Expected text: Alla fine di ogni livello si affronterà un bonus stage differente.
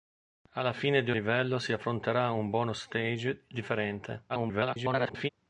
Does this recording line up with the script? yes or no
no